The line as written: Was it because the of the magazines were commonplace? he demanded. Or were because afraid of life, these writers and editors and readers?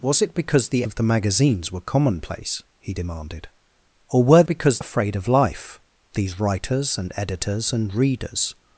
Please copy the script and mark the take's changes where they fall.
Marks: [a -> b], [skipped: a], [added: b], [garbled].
Was it because the of the magazines were commonplace? he demanded. Or were because afraid of life, these writers and editors and readers?